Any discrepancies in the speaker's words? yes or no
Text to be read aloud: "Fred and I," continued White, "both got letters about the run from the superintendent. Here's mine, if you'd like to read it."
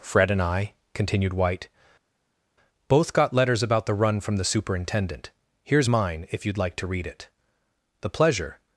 yes